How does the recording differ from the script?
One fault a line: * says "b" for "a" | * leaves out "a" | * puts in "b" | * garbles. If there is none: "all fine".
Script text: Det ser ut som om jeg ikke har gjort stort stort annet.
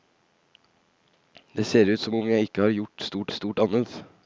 all fine